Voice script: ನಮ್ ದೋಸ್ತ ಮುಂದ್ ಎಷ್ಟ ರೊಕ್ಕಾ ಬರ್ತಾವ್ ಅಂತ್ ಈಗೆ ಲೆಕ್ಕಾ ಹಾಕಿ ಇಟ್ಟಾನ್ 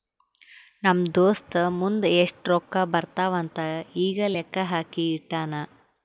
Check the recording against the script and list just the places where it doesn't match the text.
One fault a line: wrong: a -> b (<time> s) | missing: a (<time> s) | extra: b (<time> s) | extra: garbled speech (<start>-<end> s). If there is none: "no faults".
no faults